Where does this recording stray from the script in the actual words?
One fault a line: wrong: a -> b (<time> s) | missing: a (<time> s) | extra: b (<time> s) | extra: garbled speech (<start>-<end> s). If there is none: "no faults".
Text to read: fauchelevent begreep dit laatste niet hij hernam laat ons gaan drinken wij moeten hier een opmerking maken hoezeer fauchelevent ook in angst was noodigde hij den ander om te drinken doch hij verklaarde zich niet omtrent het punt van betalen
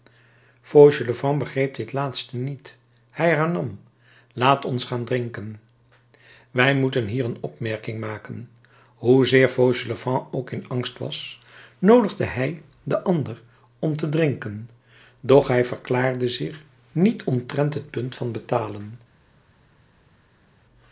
no faults